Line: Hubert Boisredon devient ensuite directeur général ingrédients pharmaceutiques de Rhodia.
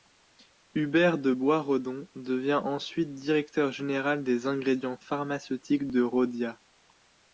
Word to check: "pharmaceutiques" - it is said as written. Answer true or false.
true